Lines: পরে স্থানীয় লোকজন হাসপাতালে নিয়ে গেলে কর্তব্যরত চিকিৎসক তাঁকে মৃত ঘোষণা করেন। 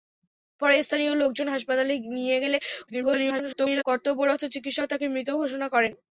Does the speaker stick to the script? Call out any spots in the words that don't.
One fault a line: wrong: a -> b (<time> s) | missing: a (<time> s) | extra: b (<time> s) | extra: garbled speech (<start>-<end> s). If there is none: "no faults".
extra: garbled speech (2.9-3.8 s)